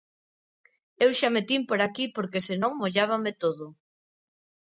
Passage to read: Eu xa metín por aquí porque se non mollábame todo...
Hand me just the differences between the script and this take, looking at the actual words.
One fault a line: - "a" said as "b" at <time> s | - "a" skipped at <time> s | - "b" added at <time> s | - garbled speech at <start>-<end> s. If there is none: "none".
none